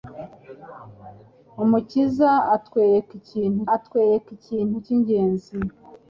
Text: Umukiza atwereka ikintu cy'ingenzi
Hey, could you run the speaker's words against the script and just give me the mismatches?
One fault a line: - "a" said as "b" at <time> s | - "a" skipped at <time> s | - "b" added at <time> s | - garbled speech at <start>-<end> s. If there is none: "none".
- "atwereka ikintu" added at 3.8 s